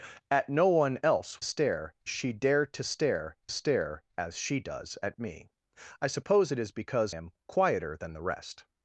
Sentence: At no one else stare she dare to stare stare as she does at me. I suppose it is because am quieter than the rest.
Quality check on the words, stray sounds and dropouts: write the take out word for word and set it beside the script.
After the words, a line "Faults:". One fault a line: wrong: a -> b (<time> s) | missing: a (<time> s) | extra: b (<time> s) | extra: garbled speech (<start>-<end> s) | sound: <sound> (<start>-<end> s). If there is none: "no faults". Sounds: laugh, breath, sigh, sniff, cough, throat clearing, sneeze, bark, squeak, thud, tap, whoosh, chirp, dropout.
At no one else stare she dare to stare stare as she does at me. I suppose it is because am quieter than the rest.
Faults:
no faults